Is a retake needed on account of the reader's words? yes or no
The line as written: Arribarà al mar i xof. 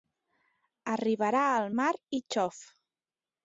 no